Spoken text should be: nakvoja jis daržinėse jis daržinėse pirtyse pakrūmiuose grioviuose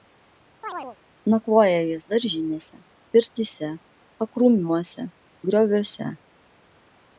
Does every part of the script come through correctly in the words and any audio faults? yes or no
no